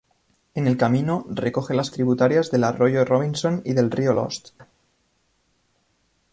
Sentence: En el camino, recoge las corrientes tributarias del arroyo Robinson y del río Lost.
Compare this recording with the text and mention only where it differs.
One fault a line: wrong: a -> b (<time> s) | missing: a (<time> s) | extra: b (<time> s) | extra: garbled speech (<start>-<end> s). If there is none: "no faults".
missing: corrientes (1.9 s)